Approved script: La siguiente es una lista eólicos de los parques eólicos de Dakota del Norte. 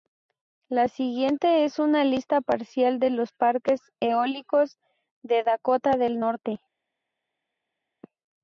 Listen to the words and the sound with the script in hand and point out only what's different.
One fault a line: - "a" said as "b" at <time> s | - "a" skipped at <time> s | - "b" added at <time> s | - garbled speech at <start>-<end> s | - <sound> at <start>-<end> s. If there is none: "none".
- "eólicos" said as "parcial" at 2.4 s